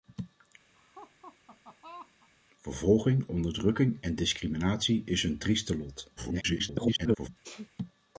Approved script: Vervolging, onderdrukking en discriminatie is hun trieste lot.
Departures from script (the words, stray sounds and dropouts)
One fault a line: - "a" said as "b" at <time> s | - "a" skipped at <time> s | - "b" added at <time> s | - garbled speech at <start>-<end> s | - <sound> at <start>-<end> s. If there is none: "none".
- laugh at 0.7-2.3 s
- garbled speech at 6.2-7.3 s
- sneeze at 7.4-7.7 s